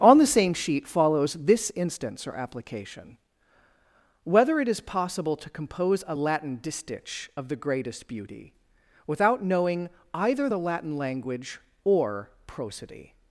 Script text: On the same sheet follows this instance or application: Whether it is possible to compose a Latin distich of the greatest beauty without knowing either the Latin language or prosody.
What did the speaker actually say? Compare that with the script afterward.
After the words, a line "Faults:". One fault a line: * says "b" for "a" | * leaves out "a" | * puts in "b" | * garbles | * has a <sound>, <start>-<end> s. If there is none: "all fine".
On the same sheet follows this instance or application: Whether it is possible to compose a Latin distich of the greatest beauty without knowing either the Latin language or prosody.
Faults:
all fine